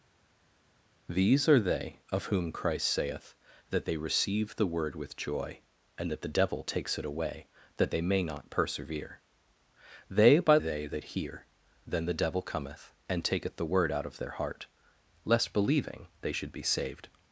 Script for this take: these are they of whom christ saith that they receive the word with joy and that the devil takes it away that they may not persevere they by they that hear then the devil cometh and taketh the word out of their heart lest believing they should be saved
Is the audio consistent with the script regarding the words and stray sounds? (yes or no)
yes